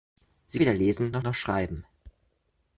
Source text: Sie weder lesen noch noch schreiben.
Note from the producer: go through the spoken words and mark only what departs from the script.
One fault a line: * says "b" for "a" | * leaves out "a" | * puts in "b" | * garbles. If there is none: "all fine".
all fine